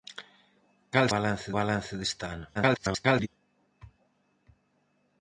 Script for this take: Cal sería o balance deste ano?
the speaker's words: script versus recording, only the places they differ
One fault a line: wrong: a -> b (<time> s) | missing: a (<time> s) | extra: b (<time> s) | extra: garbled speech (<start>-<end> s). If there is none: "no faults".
wrong: sería -> balance (1.1 s)
extra: garbled speech (2.5-3.3 s)